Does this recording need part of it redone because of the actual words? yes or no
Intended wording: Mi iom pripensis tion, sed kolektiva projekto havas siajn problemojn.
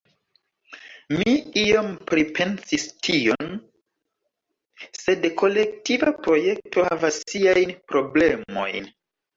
no